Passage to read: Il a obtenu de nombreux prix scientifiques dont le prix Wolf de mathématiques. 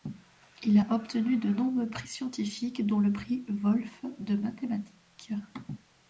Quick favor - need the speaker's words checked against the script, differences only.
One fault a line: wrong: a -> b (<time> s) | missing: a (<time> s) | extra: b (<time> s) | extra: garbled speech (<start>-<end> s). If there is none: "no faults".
no faults